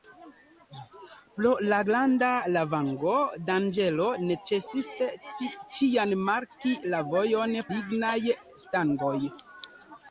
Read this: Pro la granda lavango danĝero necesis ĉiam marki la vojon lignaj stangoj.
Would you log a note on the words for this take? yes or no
no